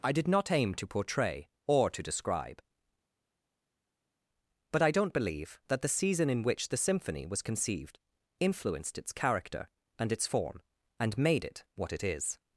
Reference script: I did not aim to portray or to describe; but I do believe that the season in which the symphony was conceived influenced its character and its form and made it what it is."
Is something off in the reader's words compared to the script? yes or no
yes